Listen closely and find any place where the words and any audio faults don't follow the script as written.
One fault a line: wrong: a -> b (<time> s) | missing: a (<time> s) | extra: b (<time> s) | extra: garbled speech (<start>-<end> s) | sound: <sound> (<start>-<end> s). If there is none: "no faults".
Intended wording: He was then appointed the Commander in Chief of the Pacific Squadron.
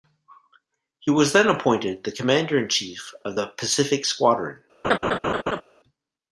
sound: laugh (4.8-5.6 s)